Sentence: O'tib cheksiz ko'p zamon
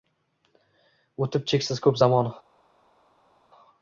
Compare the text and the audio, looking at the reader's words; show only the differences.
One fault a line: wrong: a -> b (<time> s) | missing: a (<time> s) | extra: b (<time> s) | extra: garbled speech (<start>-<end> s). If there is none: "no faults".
no faults